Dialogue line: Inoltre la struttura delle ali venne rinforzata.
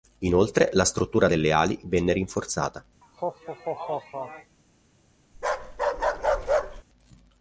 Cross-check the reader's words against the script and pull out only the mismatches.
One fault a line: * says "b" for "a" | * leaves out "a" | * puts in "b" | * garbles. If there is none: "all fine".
all fine